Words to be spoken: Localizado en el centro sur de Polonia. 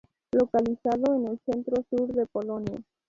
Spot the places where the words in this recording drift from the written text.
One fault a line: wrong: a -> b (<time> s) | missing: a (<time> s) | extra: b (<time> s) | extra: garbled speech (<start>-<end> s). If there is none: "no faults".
no faults